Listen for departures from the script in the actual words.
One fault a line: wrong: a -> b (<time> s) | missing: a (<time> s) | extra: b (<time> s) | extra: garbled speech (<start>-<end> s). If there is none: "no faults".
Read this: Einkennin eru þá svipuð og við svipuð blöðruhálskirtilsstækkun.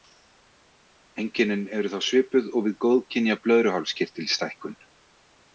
wrong: svipuð -> góðkynja (2.9 s)